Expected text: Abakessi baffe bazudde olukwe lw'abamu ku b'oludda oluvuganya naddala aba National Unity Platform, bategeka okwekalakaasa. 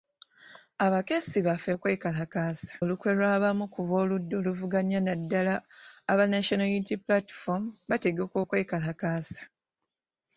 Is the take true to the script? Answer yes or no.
no